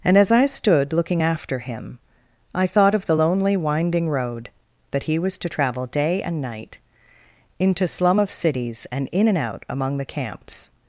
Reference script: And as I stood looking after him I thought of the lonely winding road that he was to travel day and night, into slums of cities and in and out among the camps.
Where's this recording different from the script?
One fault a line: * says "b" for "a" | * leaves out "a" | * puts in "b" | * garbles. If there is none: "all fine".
* says "slum" for "slums"